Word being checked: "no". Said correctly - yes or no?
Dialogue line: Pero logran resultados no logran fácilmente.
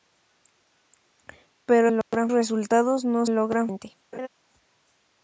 yes